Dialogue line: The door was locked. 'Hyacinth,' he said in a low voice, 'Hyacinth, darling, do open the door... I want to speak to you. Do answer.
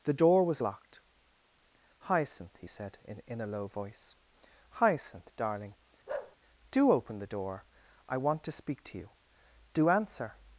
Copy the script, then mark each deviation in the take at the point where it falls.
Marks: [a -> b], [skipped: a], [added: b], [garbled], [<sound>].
The door was locked. 'Hyacinth,' he said in [added: in] a low voice, 'Hyacinth, darling, [bark] do open the door... I want to speak to you. Do answer.